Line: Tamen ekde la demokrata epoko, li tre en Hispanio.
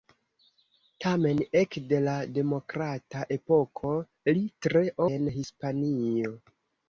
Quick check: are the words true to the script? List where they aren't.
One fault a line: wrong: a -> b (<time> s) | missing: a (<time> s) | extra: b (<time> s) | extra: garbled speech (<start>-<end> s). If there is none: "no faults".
no faults